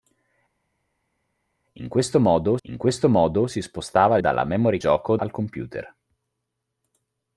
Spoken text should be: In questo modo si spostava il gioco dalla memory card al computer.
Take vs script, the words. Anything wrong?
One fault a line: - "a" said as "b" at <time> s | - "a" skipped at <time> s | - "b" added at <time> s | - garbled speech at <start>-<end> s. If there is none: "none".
- "in questo modo" added at 2.6 s
- "il gioco" skipped at 4.2 s
- "card" said as "gioco" at 4.8 s